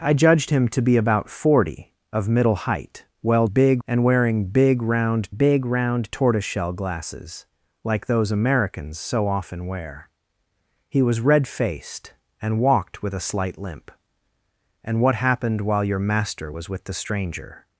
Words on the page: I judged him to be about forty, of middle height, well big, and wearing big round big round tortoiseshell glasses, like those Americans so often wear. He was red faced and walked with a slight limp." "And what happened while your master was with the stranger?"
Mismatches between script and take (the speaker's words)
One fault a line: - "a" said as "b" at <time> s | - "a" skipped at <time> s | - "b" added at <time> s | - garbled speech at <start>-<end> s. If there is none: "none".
none